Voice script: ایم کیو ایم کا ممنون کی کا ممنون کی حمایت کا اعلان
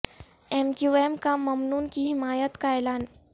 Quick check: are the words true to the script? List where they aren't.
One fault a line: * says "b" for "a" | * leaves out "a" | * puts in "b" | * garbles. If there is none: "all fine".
* leaves out "کا ممنون کی"